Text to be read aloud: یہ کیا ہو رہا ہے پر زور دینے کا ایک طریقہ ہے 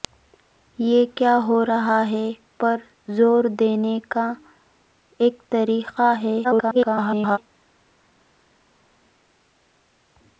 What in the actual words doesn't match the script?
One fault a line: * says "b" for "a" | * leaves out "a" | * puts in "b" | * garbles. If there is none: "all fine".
* garbles